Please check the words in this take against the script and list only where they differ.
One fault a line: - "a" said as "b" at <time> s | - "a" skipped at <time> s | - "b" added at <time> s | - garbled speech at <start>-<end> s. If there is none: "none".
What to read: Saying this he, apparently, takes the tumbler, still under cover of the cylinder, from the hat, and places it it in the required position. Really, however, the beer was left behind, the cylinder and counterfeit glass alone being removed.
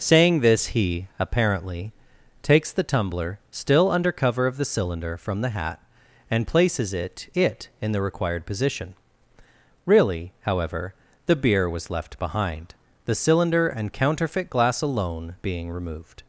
none